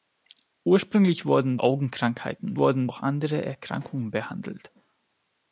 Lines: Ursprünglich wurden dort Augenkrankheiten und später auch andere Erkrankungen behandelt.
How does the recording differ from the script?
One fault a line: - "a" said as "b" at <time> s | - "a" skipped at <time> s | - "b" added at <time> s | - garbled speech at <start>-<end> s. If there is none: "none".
- "dort" skipped at 1.6 s
- "später" said as "wurden" at 2.6 s